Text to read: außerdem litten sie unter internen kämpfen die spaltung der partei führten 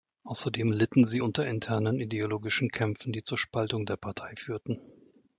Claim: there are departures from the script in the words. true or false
true